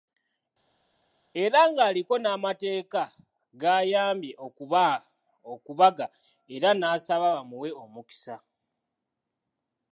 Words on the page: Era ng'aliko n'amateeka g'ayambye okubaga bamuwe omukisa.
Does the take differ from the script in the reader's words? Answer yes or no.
yes